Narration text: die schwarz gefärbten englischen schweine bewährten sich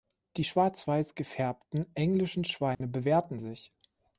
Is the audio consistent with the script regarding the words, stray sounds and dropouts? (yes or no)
no